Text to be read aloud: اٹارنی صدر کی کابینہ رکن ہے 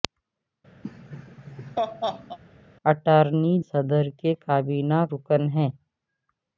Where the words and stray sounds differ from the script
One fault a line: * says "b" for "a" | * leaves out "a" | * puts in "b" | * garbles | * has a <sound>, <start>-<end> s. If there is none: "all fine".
* has a laugh, 0.8-2.4 s